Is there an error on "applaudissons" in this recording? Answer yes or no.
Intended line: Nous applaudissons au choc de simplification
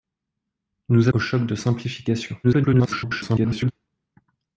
yes